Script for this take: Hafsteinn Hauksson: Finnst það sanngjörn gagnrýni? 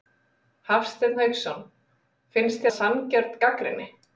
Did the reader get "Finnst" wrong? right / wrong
right